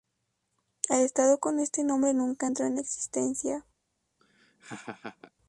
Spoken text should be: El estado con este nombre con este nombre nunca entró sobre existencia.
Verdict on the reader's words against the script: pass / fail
fail